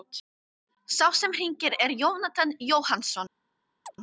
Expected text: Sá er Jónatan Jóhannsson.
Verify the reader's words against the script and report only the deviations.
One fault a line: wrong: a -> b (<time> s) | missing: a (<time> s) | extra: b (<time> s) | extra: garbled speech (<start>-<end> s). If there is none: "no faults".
extra: sem hringir (1.1 s)